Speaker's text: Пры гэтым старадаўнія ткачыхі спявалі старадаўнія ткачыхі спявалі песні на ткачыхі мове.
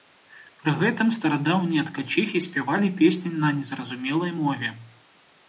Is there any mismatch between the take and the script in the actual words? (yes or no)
yes